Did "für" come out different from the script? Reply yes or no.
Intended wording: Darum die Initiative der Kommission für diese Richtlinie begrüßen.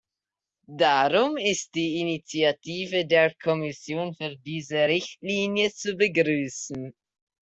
no